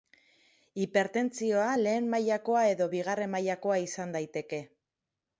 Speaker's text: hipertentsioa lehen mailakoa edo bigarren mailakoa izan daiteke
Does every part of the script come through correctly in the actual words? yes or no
yes